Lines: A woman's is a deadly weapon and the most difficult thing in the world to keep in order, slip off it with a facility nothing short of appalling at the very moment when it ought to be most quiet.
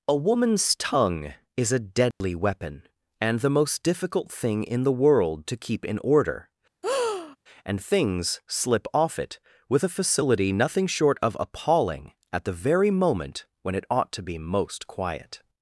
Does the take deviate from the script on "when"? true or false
false